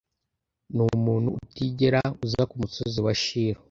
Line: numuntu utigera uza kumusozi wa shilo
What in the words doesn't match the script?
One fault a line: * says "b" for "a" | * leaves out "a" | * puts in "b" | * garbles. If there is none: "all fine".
all fine